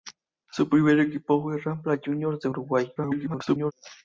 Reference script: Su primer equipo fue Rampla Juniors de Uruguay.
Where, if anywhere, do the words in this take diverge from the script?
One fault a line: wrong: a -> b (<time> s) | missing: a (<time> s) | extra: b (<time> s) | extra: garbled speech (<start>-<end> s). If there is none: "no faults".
extra: garbled speech (3.0-3.7 s)